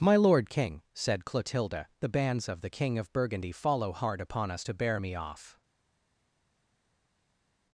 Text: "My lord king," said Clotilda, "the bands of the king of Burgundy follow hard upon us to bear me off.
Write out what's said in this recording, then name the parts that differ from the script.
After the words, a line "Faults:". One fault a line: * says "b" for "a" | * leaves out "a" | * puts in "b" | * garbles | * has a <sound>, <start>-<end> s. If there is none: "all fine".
"My lord king," said Clotilda, "the bands of the king of Burgundy follow hard upon us to bear me off.
Faults:
all fine